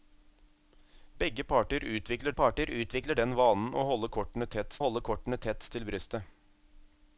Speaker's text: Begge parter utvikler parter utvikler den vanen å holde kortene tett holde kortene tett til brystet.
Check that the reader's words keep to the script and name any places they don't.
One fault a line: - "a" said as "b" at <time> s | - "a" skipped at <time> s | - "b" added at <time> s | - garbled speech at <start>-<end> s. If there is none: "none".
none